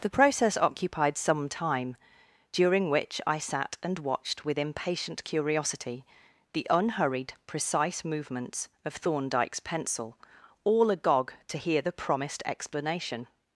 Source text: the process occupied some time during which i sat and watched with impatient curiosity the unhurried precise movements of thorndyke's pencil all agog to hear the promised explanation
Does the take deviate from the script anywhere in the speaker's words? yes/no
no